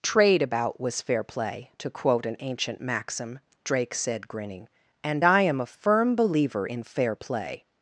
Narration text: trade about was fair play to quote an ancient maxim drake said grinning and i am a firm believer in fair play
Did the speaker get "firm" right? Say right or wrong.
right